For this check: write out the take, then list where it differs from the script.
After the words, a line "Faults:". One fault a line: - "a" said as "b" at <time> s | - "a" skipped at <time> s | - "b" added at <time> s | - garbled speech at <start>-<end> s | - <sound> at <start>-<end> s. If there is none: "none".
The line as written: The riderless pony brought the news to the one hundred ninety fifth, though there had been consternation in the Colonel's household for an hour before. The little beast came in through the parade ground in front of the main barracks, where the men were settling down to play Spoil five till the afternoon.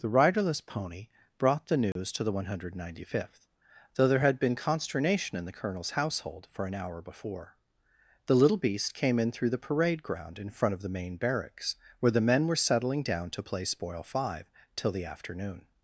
The riderless pony brought the news to the one hundred ninety fifth, though there had been consternation in the Colonel's household for an hour before. The little beast came in through the parade ground in front of the main barracks, where the men were settling down to play Spoil five till the afternoon.
Faults:
- dropout at 1.9-2.0 s